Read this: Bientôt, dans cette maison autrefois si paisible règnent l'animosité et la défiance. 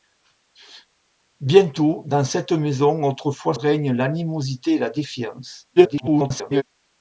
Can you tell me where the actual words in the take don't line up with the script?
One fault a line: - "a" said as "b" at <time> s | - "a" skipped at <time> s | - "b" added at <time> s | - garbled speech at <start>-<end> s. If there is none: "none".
- "si paisible" skipped at 3.5 s
- garbled speech at 5.8-6.6 s